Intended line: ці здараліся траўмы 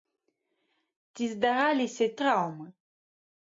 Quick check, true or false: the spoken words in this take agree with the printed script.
true